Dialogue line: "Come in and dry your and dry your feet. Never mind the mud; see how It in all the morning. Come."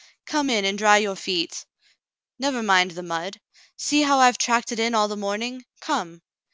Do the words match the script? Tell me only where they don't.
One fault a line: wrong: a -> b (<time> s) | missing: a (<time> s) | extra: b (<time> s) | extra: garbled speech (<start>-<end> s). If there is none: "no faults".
missing: and dry your (1.2 s)
extra: I've tracked (4.2 s)